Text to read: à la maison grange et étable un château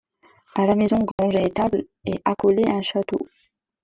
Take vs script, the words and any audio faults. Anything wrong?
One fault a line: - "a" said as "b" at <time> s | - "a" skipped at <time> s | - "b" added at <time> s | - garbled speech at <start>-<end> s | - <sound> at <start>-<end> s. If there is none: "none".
- dropout at 1.1-1.2 s
- "est accolé" added at 2.1 s